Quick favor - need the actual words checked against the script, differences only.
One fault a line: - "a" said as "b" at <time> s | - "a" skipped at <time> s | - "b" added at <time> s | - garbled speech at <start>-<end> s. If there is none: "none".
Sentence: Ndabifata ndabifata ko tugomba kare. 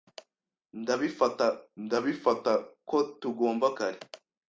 none